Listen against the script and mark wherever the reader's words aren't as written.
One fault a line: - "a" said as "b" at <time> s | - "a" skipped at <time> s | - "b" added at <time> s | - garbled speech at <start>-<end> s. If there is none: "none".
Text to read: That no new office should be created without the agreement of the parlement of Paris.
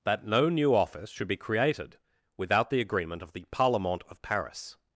none